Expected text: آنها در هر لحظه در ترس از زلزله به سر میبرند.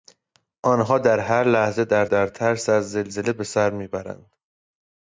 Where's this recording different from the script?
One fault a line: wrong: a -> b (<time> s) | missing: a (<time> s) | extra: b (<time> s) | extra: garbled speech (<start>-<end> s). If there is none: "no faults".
extra: در (2.1 s)